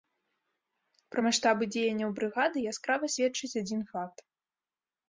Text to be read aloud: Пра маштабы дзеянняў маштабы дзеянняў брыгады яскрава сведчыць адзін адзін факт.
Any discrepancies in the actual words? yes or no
yes